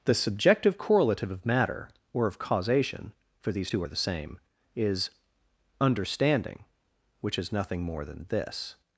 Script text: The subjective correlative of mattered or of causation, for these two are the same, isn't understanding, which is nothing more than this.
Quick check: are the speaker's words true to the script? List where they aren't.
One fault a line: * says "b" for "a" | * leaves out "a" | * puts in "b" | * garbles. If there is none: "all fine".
* says "matter" for "mattered"
* says "is" for "isn't"